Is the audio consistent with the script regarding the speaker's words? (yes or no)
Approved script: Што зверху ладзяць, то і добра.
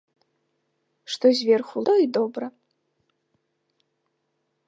no